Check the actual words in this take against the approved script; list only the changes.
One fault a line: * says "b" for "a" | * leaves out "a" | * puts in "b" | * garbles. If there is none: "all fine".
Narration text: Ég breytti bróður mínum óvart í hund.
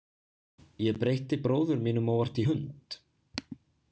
all fine